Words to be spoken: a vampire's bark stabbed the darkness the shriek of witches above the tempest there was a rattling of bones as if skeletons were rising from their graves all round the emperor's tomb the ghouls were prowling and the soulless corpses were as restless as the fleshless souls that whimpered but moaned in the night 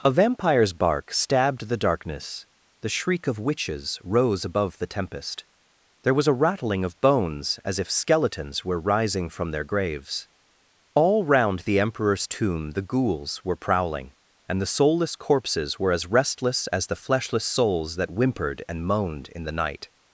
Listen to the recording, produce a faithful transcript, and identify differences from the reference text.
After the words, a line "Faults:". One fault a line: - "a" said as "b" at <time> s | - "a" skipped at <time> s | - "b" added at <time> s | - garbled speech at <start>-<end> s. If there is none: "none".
a vampire's bark stabbed the darkness the shriek of witches rose above the tempest there was a rattling of bones as if skeletons were rising from their graves all round the emperor's tomb the ghouls were prowling and the soulless corpses were as restless as the fleshless souls that whimpered and moaned in the night
Faults:
- "rose" added at 4.0 s
- "but" said as "and" at 18.7 s